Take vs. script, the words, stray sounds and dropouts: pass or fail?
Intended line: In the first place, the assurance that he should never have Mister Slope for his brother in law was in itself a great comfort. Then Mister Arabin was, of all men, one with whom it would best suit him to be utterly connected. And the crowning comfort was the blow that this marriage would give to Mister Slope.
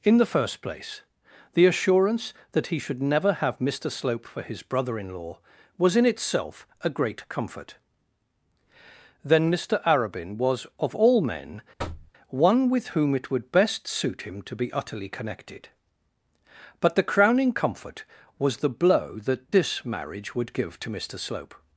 fail